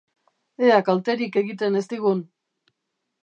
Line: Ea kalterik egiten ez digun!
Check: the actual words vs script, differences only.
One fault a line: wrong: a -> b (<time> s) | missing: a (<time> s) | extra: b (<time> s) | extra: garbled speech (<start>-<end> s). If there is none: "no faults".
no faults